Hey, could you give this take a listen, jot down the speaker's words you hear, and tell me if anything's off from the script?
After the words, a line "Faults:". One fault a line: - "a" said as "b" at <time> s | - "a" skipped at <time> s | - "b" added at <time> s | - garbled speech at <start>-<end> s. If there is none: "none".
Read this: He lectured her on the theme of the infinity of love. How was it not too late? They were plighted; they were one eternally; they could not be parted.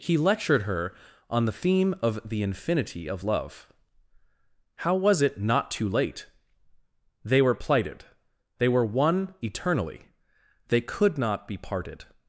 He lectured her on the theme of the infinity of love. How was it not too late? They were plighted; they were one eternally; they could not be parted.
Faults:
none